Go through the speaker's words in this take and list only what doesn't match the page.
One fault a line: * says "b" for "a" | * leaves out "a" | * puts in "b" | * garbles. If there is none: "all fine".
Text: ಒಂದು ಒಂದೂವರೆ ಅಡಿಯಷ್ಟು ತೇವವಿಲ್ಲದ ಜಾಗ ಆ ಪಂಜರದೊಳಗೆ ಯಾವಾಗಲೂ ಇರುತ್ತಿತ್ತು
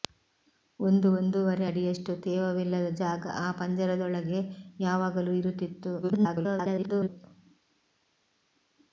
* garbles